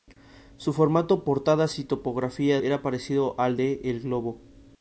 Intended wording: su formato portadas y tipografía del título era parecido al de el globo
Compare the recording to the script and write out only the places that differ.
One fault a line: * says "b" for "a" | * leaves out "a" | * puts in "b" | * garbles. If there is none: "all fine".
* leaves out "del título"